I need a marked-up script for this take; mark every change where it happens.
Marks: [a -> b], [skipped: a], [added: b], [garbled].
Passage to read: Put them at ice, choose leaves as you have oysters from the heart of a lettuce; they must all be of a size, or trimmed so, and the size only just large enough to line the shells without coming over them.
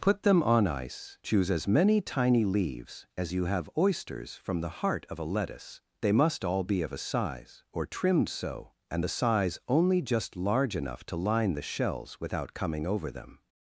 Put them [at -> on] ice, choose [added: as many tiny] leaves as you have oysters from the heart of a lettuce; they must all be of a size, or trimmed so, and the size only just large enough to line the shells without coming over them.